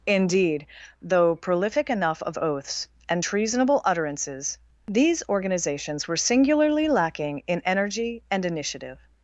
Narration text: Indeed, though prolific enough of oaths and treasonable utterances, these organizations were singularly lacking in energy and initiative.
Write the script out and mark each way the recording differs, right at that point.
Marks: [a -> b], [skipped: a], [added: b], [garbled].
Indeed, though prolific enough of oaths and treasonable utterances, these organizations were singularly lacking in energy and initiative.